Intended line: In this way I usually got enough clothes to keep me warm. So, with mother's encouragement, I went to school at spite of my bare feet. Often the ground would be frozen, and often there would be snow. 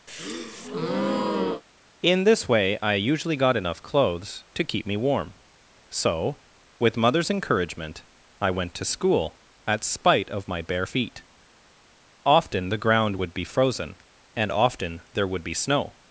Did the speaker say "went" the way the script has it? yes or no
yes